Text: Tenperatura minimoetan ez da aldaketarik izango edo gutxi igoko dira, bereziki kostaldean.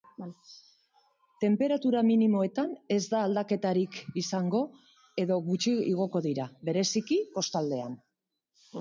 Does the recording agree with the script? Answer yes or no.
yes